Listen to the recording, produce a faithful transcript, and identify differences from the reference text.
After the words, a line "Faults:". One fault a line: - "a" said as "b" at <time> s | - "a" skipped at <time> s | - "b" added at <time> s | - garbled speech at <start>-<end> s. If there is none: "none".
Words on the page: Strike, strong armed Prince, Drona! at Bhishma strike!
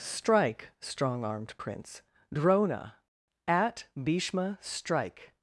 Strike, strong armed Prince, Drona! at Bhishma strike!
Faults:
none